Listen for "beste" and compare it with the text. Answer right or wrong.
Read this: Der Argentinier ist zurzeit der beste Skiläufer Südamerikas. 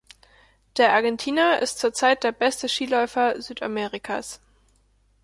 right